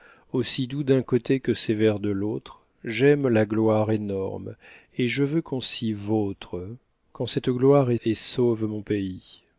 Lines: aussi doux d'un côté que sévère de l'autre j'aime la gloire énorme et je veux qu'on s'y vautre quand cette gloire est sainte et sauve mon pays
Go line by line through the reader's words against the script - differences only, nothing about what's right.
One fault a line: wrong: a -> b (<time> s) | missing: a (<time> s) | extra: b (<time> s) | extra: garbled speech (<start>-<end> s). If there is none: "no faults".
missing: sainte (8.0 s)